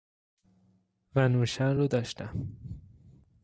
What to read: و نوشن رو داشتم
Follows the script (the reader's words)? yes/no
yes